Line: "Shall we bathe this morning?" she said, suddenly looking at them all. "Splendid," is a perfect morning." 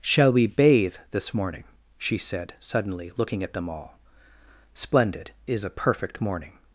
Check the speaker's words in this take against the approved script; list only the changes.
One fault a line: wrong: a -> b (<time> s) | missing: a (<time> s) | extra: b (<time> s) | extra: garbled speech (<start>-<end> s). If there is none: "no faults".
no faults